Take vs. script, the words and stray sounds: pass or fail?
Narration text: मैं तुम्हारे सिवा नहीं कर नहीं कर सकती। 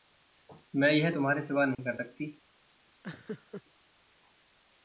fail